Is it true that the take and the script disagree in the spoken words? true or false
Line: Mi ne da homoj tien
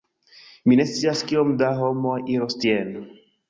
true